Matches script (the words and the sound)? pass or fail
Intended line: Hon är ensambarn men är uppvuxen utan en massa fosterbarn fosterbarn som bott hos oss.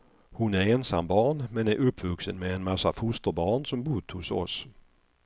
fail